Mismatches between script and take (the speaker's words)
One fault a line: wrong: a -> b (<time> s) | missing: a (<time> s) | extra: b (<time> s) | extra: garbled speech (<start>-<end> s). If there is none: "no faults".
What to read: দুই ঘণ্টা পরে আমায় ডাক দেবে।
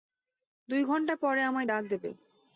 no faults